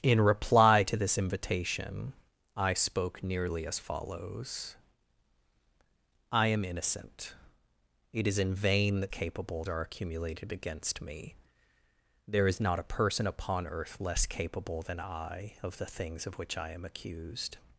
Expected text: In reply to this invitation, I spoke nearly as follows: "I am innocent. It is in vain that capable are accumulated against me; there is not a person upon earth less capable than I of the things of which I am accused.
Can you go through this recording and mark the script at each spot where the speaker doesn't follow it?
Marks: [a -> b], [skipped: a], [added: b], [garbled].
In reply to this invitation, I spoke nearly as follows: "I am innocent. It is in vain that capable are accumulated against me; there is not a person upon earth less capable than I of the things of which I am accused.